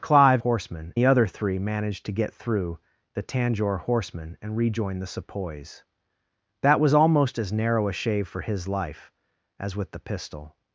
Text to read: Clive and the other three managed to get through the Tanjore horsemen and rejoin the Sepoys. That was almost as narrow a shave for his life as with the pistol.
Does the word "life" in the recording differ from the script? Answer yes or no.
no